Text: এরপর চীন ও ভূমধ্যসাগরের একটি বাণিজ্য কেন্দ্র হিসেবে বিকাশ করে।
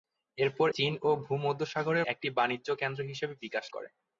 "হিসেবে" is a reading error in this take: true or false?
false